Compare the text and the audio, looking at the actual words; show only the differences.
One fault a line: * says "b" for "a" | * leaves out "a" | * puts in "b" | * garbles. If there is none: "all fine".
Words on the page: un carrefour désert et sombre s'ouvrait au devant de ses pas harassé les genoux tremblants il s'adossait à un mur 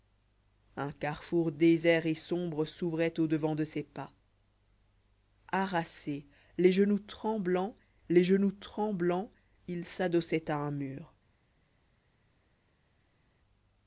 * puts in "les genoux tremblants"